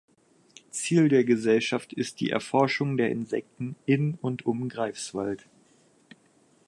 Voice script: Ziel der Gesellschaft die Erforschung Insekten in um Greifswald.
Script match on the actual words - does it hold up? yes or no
no